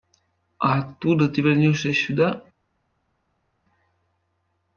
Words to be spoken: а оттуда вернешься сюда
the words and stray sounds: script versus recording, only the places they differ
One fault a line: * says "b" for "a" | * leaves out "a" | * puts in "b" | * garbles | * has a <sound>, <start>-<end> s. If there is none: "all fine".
* puts in "ты"